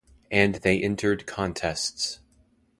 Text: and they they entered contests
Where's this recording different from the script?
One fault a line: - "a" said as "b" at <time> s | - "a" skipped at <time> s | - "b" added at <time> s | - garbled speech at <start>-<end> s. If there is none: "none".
- "they" skipped at 0.8 s